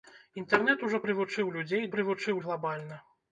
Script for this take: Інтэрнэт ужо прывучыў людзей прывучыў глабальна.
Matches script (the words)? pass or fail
pass